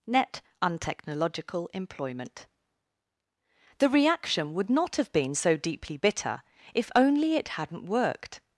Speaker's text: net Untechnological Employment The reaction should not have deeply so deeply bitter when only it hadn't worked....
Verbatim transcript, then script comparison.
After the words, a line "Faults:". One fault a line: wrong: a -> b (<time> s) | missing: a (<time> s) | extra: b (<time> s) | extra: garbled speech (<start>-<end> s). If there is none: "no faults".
net Untechnological Employment The reaction would not have been so deeply bitter if only it hadn't worked....
Faults:
wrong: should -> would (4.5 s)
wrong: deeply -> been (5.1 s)
wrong: when -> if (6.7 s)